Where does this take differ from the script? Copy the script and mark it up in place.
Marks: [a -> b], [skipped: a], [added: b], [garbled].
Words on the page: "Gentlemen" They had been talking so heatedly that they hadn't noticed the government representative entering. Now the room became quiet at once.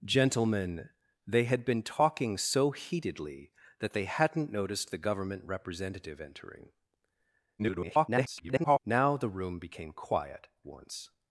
"Gentlemen" They had been talking so heatedly that they hadn't noticed the government representative entering. [garbled] Now the room became quiet [skipped: at] once.